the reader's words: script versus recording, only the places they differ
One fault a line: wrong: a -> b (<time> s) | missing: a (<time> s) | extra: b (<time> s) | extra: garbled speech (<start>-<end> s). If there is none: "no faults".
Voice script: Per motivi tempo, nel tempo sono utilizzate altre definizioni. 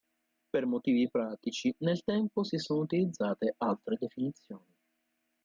wrong: tempo -> pratici (1.1 s)
extra: si (2.4 s)